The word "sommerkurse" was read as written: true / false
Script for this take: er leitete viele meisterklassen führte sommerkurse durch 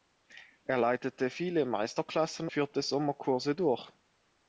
true